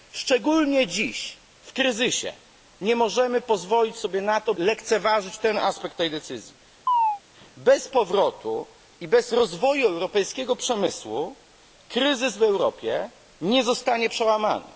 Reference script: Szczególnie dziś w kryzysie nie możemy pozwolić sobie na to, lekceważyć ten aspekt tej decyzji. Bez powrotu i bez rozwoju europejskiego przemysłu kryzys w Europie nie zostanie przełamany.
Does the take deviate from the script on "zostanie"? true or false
false